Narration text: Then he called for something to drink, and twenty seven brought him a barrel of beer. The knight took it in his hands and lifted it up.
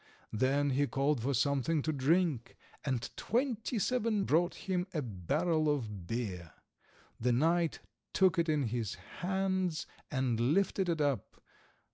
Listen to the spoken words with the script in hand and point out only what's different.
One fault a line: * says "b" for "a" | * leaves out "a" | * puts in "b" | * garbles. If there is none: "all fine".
all fine